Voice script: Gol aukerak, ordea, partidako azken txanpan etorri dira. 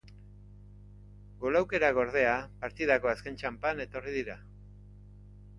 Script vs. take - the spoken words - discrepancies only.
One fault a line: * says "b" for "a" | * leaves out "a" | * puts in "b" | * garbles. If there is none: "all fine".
all fine